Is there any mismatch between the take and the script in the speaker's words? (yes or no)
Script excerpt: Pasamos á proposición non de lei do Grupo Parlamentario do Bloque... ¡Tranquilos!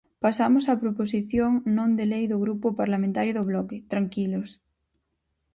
no